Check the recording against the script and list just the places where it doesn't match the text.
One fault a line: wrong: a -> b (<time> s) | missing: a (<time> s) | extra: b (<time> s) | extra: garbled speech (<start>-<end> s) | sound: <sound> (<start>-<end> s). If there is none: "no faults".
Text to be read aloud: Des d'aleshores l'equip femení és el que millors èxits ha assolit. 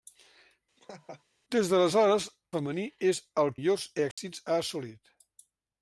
sound: laugh (0.8-1.2 s)
missing: l'equip (2.3 s)
missing: que (3.5 s)
sound: dropout (4.1-4.2 s)